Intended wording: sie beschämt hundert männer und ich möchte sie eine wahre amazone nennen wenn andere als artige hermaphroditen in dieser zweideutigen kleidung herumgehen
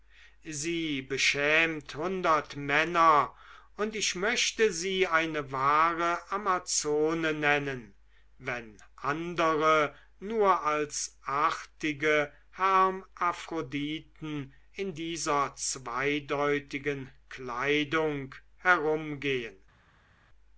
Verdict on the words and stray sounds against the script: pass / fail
fail